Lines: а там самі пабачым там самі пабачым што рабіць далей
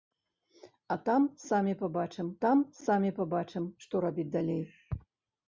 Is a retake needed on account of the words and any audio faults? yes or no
no